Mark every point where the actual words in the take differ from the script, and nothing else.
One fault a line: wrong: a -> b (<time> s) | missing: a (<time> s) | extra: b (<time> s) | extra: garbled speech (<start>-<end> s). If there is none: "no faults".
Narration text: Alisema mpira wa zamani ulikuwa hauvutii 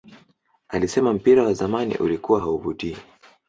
no faults